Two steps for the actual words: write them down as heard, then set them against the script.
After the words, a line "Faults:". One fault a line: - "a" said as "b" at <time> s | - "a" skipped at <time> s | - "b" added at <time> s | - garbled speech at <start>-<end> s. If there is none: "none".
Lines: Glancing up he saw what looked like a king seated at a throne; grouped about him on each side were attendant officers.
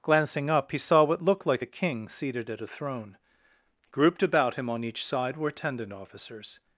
Glancing up he saw what looked like a king seated at a throne; grouped about him on each side were attendant officers.
Faults:
none